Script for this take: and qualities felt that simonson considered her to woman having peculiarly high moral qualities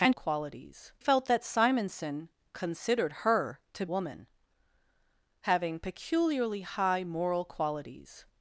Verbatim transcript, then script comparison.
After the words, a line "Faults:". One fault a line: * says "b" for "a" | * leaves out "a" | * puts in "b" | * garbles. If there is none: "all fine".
and qualities felt that simonson considered her to woman having peculiarly high moral qualities
Faults:
all fine